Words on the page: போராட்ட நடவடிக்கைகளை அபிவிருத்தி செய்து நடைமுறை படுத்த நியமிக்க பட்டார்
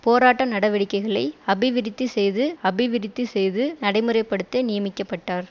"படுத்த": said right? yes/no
yes